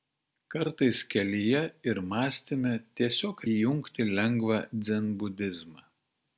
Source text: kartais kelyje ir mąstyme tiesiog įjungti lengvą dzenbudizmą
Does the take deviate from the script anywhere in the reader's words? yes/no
no